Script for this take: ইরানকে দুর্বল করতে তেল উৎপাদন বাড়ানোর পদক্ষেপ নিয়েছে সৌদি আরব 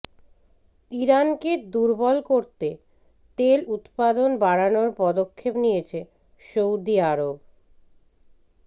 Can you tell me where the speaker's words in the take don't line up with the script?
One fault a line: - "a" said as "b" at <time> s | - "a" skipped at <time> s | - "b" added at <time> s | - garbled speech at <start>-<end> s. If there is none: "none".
none